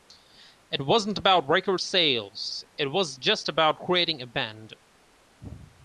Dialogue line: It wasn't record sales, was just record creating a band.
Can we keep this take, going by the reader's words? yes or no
no